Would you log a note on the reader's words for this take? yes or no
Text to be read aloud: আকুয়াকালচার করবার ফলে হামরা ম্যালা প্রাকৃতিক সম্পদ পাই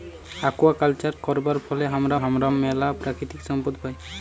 yes